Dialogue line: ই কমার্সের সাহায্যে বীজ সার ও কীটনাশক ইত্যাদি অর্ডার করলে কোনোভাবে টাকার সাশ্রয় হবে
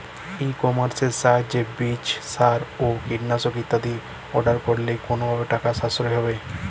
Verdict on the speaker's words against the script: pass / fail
pass